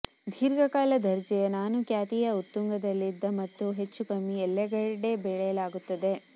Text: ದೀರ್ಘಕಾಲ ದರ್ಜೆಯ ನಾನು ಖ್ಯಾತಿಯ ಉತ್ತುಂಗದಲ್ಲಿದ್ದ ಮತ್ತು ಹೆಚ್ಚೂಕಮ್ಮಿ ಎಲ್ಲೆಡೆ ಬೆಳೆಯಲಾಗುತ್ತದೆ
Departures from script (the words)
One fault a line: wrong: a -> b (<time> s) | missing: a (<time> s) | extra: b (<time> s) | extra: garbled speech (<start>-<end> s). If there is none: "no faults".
no faults